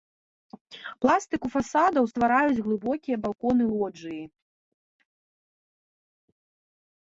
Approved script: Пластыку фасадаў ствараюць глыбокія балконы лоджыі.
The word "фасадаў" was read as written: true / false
true